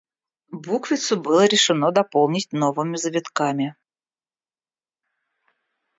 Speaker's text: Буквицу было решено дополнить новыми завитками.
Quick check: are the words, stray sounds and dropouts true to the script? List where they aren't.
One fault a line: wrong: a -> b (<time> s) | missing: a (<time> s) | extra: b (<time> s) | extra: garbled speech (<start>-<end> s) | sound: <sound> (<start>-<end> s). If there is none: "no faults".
no faults